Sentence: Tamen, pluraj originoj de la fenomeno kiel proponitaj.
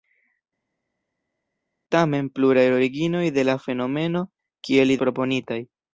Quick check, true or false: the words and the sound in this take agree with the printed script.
true